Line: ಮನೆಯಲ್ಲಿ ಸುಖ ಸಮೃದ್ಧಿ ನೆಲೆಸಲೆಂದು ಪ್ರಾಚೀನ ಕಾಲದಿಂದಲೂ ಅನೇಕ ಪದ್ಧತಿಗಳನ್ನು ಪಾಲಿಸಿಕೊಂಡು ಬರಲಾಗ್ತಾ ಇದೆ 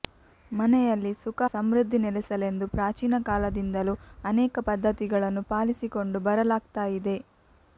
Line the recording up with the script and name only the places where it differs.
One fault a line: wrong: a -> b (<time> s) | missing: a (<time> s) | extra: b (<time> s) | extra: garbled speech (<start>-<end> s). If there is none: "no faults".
no faults